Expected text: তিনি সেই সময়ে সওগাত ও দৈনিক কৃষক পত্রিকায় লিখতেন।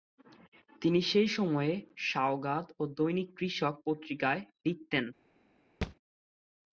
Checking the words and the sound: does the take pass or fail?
fail